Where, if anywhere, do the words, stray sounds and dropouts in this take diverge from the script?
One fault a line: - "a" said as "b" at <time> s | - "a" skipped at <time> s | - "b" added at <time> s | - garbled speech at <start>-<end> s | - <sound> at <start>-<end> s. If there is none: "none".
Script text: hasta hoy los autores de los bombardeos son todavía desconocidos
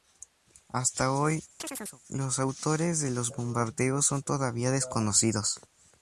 - chirp at 1.6-2.0 s